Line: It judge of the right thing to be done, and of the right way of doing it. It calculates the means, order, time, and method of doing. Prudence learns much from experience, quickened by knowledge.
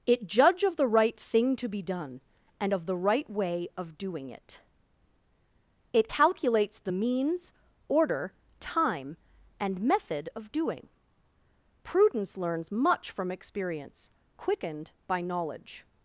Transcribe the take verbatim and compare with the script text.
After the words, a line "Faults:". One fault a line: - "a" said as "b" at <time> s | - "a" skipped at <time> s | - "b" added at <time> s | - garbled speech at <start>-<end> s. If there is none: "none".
It judge of the right thing to be done, and of the right way of doing it. It calculates the means, order, time, and method of doing. Prudence learns much from experience, quickened by knowledge.
Faults:
none